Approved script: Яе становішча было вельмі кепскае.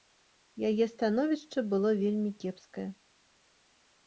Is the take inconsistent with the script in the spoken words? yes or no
no